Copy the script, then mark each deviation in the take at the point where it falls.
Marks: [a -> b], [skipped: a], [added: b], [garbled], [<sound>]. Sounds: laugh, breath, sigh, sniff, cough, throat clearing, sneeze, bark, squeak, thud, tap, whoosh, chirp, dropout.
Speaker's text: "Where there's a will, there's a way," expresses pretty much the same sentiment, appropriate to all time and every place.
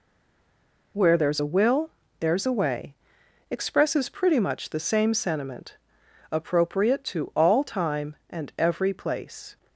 "Where there's a will, there's a way," expresses pretty much the same sentiment, appropriate to all time and every place.